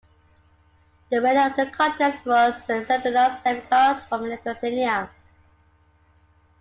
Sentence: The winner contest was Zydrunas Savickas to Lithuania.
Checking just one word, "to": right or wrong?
wrong